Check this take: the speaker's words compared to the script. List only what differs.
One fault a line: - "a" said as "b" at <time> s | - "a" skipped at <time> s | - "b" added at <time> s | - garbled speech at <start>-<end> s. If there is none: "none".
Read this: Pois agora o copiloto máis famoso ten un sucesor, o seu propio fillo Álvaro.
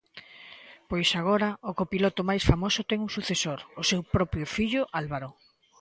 none